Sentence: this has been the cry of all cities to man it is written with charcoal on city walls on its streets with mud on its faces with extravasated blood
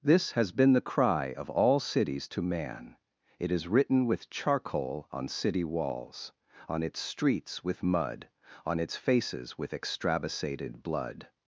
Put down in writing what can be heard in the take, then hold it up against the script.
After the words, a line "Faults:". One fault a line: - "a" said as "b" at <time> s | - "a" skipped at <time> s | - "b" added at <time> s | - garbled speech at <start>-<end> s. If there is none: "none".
this has been the cry of all cities to man it is written with charcoal on city walls on its streets with mud on its faces with extravasated blood
Faults:
none